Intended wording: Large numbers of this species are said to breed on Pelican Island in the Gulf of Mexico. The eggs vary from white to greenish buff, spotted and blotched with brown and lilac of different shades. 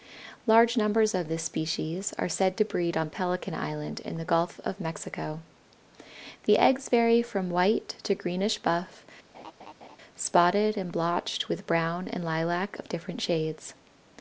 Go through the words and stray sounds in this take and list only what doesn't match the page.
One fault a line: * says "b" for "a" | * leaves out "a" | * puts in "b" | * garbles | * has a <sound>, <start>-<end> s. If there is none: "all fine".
* has a laugh, 9.3-10.0 s